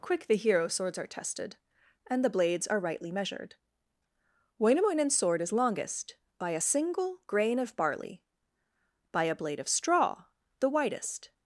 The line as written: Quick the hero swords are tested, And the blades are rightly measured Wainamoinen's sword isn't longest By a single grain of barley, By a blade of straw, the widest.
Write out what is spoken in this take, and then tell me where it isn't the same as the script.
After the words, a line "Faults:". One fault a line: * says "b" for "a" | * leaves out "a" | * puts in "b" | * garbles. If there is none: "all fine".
Quick the hero swords are tested, And the blades are rightly measured Wainamoinen's sword is longest By a single grain of barley, By a blade of straw, the widest.
Faults:
* says "is" for "isn't"